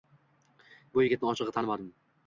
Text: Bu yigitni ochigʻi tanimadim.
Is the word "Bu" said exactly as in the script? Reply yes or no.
yes